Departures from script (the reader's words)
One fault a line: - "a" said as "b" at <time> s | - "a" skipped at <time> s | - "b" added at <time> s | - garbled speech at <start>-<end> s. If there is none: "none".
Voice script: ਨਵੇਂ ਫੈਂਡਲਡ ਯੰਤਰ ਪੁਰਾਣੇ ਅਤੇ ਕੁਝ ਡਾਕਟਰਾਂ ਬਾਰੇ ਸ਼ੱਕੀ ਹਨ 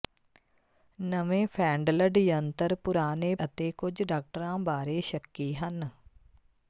none